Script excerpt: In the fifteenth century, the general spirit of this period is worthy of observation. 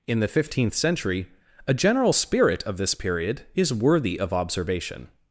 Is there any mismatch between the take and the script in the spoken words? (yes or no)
yes